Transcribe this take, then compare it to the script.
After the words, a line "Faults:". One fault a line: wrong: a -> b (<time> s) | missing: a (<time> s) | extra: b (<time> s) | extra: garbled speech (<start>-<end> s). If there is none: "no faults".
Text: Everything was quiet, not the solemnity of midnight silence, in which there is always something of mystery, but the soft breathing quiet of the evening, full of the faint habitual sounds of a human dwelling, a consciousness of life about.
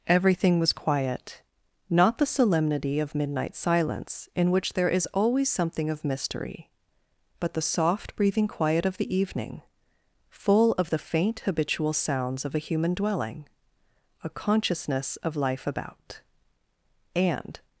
Everything was quiet, not the solemnity of midnight silence, in which there is always something of mystery, but the soft breathing quiet of the evening, full of the faint habitual sounds of a human dwelling, a consciousness of life about. And
Faults:
extra: And (17.1 s)